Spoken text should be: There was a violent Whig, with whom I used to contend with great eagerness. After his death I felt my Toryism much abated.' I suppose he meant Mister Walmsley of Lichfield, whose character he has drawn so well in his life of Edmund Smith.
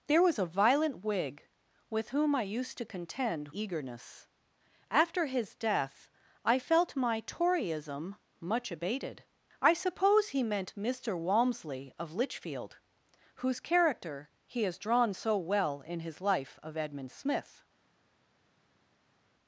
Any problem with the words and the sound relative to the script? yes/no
yes